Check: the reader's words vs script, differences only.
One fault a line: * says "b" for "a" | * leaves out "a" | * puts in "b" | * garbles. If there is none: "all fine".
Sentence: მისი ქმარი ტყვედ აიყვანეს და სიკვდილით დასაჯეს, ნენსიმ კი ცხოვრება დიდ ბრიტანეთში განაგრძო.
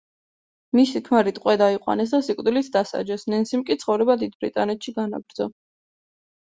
all fine